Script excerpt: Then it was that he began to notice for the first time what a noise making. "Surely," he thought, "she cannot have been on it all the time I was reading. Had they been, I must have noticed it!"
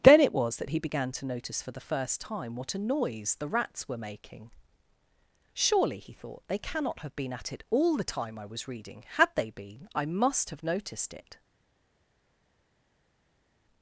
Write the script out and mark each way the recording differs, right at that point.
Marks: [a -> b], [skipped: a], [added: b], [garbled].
Then it was that he began to notice for the first time what a noise [added: the rats were] making. "Surely," he thought, ["she -> they] cannot have been [on -> at] it all the time I was reading. Had they been, I must have noticed it!"